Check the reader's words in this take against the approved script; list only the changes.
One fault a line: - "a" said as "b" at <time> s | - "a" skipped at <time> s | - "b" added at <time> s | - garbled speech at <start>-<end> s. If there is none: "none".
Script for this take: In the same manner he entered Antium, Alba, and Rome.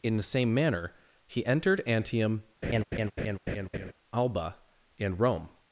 none